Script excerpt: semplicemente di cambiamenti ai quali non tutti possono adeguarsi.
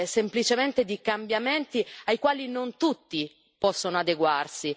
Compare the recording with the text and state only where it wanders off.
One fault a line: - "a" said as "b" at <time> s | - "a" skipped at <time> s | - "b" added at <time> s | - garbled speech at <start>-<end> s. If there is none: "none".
none